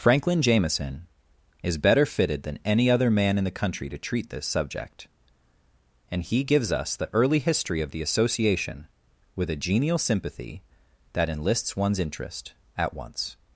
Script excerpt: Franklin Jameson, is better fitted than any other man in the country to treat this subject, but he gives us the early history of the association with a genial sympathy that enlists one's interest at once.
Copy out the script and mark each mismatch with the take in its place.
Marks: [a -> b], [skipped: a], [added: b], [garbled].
Franklin Jameson, is better fitted than any other man in the country to treat this subject, [but -> and] he gives us the early history of the association with a genial sympathy that enlists one's interest at once.